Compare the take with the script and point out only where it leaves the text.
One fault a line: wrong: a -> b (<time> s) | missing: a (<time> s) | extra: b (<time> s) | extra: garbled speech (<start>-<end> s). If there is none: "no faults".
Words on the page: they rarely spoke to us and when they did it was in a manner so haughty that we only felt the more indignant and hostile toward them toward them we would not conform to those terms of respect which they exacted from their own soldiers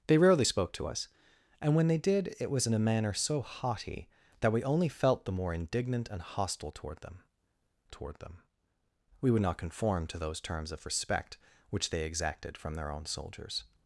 no faults